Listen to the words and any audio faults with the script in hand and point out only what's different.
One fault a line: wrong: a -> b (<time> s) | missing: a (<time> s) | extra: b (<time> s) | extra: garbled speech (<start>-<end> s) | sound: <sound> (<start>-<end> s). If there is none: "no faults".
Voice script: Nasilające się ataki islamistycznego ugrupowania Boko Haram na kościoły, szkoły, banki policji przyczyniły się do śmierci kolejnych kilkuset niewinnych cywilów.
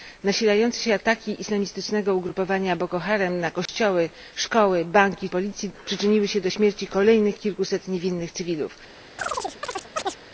sound: dropout (3.7-3.7 s)
sound: chirp (9.2-10.2 s)